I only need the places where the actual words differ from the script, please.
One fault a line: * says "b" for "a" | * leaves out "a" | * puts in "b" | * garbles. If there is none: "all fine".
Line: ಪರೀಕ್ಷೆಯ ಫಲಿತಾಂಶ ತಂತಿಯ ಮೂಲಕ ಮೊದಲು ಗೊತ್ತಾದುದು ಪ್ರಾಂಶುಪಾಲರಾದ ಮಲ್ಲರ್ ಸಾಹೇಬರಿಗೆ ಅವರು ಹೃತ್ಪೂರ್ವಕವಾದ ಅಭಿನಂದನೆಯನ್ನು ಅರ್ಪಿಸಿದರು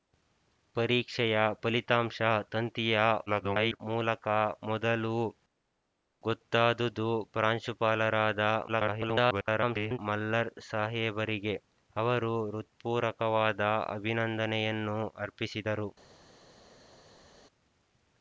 * garbles
* garbles